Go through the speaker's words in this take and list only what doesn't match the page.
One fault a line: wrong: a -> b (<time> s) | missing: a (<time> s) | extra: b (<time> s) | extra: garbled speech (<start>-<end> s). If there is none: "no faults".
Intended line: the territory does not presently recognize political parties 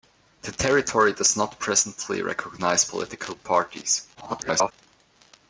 extra: garbled speech (4.1-4.7 s)